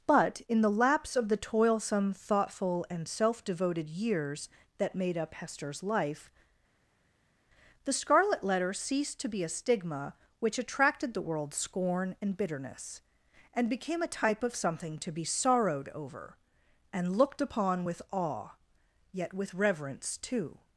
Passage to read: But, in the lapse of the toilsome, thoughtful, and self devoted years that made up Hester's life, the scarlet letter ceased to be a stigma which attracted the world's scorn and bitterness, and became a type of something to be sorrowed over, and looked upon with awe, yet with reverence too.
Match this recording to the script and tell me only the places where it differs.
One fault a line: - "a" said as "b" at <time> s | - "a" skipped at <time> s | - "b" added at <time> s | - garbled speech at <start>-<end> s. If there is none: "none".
none